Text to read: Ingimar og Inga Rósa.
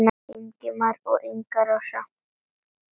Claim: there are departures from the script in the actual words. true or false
false